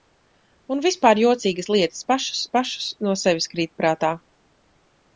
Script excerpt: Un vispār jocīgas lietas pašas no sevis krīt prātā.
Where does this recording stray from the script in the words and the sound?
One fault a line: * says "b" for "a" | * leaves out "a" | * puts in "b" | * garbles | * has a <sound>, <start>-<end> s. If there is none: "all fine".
* puts in "pašas"